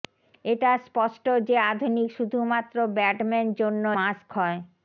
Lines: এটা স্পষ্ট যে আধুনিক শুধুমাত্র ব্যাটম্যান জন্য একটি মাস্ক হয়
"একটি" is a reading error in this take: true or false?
true